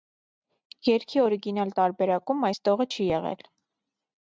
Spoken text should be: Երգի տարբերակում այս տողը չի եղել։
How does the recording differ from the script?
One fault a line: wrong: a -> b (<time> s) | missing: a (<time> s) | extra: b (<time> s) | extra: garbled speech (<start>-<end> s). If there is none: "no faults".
extra: օրիգինալ (1.2 s)